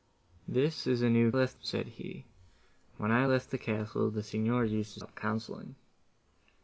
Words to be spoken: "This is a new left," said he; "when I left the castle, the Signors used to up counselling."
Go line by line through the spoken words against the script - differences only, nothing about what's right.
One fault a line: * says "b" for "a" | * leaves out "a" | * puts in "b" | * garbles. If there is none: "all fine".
all fine